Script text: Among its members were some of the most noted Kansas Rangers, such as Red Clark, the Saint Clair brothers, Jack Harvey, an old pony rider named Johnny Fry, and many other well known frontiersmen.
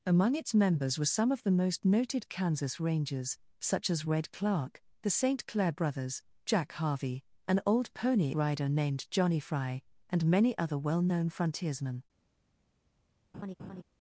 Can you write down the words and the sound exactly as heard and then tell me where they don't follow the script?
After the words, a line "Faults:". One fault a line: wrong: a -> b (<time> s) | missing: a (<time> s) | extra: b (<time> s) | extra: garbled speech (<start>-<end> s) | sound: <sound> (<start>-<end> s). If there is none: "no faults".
Among its members were some of the most noted Kansas Rangers, such as Red Clark, the Saint Clair brothers, Jack Harvey, an old pony rider named Johnny Fry, and many other well known frontiersmen.
Faults:
sound: laugh (13.3-13.8 s)